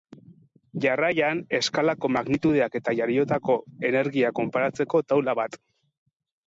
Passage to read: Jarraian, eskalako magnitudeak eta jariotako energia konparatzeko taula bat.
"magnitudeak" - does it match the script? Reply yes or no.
yes